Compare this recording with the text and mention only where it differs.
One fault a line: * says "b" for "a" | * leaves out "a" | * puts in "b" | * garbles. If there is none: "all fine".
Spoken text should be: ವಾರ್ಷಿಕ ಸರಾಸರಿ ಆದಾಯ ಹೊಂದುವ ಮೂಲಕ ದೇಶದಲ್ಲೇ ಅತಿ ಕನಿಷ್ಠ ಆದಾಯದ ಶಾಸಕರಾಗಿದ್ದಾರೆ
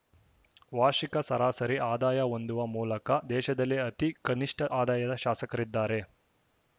all fine